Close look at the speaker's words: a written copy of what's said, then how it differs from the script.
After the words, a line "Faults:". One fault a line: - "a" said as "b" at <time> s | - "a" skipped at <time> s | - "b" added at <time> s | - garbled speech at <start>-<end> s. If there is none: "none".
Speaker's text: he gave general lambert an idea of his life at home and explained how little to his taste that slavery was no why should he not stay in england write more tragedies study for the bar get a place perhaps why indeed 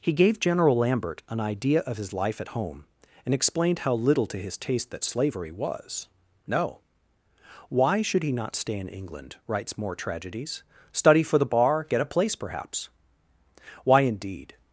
he gave general lambert an idea of his life at home and explained how little to his taste that slavery was no why should he not stay in england writes more tragedies study for the bar get a place perhaps why indeed
Faults:
- "write" said as "writes" at 9.4 s